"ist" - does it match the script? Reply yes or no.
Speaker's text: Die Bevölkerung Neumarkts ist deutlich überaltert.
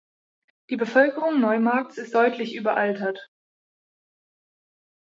yes